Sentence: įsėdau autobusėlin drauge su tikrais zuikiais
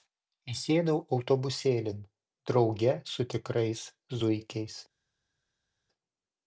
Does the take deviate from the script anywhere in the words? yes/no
no